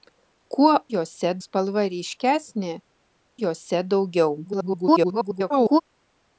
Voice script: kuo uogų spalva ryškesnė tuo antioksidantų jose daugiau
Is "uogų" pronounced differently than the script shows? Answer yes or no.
yes